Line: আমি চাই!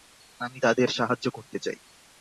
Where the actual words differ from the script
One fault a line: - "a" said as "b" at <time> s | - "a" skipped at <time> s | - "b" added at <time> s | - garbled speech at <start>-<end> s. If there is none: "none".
- "তাদের সাহায্য করতে" added at 0.6 s